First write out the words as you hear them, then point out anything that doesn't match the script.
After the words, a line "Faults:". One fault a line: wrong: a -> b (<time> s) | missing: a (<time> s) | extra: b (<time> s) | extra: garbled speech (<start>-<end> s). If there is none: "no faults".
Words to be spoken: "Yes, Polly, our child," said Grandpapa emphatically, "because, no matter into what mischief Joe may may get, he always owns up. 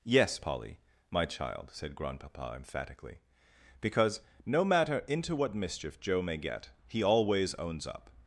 "Yes, Polly, my child," said Grandpapa emphatically, "because, no matter into what mischief Joe may get, he always owns up.
Faults:
wrong: our -> my (1.1 s)
missing: may (6.4 s)